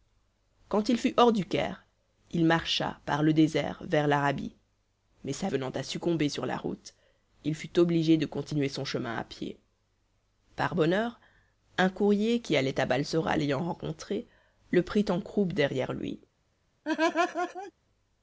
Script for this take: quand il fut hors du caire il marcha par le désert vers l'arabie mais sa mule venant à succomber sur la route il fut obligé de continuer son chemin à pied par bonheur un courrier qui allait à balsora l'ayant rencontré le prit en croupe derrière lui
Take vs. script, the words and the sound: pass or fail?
fail